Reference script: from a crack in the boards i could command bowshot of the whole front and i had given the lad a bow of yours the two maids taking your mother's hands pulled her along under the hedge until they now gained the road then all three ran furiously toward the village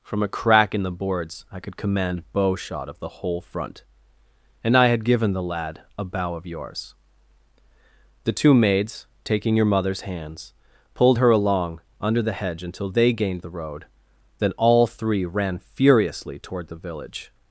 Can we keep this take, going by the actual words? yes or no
no